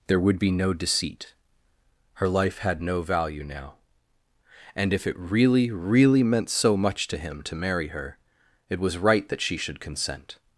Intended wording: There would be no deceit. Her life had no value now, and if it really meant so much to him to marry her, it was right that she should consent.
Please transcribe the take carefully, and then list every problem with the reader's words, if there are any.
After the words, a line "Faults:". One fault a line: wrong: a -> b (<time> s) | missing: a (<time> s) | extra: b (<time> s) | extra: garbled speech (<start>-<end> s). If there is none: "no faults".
There would be no deceit. Her life had no value now, and if it really really meant so much to him to marry her, it was right that she should consent.
Faults:
extra: really (5.7 s)